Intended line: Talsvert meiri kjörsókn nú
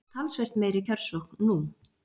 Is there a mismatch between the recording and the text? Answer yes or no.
no